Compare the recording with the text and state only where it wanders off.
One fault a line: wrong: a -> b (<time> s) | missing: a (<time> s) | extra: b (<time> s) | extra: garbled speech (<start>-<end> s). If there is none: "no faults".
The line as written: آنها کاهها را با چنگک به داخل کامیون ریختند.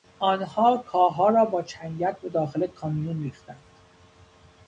no faults